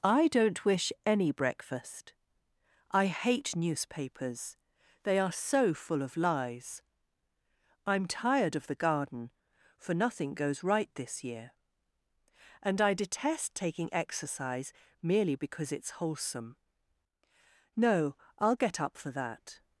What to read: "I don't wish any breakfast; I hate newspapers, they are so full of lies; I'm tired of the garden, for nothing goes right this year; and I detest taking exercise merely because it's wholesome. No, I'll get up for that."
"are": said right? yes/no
yes